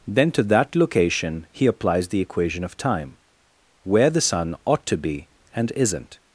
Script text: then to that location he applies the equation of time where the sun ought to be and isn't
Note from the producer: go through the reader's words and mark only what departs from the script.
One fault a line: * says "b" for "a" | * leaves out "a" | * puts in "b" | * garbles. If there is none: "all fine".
all fine